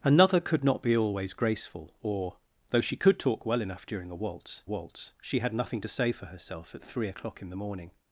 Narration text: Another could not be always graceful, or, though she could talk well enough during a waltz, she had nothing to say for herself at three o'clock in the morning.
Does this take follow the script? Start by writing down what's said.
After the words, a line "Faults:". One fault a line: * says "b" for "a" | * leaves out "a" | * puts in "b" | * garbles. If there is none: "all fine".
Another could not be always graceful, or, though she could talk well enough during a waltz waltz, she had nothing to say for herself at three o'clock in the morning.
Faults:
* puts in "waltz"